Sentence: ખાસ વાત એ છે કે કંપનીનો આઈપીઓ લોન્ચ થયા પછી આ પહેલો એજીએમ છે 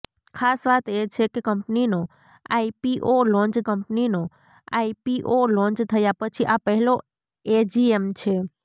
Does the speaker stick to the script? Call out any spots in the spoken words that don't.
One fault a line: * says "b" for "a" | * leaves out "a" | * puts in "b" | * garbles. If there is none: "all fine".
* puts in "કંપનીનો આઈપીઓ લોન્ચ"